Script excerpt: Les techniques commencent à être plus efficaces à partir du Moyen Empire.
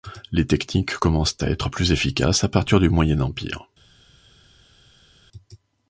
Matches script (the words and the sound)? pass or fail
pass